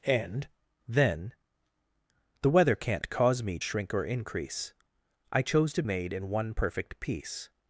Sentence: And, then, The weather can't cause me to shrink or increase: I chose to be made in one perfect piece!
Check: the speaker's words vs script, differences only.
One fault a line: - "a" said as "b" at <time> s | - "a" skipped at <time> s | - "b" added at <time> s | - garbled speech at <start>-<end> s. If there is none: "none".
- "to" skipped at 3.6 s
- "be" skipped at 5.8 s